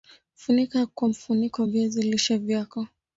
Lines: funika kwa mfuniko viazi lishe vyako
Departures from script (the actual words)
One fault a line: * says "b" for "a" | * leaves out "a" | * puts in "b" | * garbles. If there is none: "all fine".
all fine